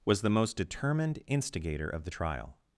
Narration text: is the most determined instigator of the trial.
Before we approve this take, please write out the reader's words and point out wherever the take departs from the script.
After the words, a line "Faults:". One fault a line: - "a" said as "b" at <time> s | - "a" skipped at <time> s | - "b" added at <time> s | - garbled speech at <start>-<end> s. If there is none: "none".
was the most determined instigator of the trial.
Faults:
- "is" said as "was" at 0.1 s